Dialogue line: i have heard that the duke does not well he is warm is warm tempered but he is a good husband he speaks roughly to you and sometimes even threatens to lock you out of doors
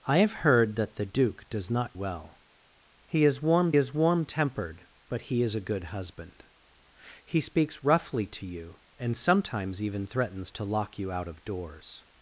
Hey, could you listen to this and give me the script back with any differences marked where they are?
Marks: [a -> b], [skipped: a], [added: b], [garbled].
i have heard that the duke does not well he is warm is warm tempered but he is a good husband he speaks roughly to you and sometimes even threatens to lock you out of doors